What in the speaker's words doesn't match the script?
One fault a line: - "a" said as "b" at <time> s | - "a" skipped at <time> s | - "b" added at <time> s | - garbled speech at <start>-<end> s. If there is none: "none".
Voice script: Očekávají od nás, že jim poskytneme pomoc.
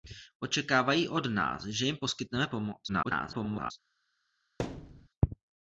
- garbled speech at 2.9-3.7 s